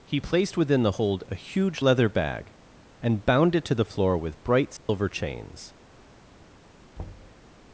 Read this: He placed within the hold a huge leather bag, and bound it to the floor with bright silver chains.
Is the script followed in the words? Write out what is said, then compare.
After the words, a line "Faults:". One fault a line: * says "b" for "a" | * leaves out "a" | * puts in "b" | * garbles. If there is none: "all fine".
He placed within the hold a huge leather bag, and bound it to the floor with bright silver chains.
Faults:
all fine